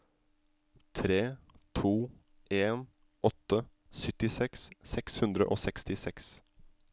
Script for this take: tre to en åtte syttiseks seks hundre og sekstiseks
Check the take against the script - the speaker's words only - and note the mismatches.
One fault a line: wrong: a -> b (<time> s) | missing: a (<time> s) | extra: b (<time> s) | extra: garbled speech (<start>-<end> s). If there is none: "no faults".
no faults